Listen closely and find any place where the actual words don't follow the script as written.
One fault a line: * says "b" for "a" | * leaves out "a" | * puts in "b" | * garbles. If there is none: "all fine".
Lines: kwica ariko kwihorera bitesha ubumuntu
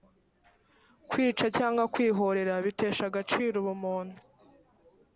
* says "cyangwa" for "ariko"
* puts in "agaciro"